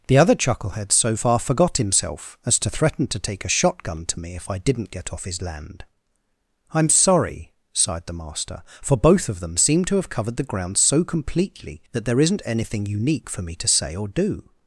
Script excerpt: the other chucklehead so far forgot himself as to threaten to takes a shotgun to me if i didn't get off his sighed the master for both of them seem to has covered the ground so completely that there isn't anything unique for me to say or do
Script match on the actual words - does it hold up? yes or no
no